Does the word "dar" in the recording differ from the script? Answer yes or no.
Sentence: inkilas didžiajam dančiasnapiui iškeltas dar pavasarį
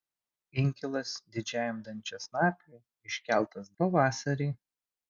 yes